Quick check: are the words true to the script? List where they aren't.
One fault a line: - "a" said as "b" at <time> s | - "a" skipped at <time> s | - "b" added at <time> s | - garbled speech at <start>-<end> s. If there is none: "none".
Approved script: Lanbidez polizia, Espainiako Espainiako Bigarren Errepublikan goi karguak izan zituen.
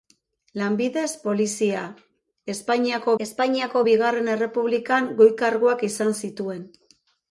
none